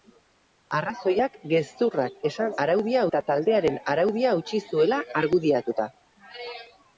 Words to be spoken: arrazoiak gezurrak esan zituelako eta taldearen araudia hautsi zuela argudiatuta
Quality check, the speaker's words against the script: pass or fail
fail